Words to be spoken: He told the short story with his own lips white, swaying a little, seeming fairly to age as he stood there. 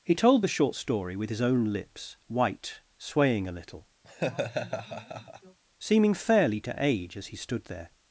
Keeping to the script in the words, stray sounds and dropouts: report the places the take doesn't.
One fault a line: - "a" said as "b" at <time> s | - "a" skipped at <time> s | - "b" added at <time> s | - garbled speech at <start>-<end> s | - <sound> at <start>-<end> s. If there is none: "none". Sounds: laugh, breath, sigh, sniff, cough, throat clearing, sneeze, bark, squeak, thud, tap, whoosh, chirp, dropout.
- laugh at 4.0-5.6 s